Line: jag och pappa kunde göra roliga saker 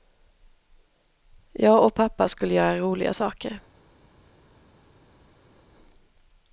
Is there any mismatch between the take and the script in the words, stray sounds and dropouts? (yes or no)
yes